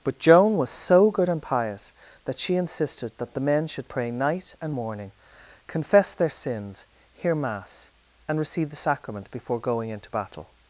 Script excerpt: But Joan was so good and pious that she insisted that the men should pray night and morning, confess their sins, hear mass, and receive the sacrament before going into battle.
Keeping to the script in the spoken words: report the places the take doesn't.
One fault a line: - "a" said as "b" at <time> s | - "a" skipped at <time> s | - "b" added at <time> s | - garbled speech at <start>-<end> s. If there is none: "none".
none